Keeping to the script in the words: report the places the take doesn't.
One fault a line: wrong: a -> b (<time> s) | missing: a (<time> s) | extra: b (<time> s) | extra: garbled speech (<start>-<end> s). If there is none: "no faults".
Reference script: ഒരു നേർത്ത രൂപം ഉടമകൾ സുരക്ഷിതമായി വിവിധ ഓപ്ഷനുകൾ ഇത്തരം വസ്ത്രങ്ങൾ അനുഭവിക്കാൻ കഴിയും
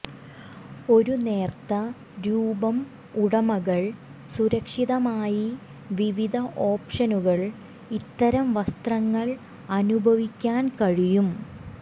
no faults